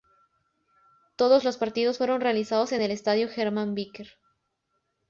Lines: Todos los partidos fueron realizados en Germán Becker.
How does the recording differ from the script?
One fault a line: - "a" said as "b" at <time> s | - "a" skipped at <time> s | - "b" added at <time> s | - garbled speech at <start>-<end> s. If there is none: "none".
- "el Estadio" added at 2.8 s